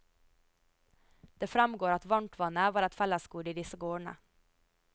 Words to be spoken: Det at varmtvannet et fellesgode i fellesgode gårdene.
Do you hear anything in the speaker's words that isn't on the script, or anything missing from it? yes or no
yes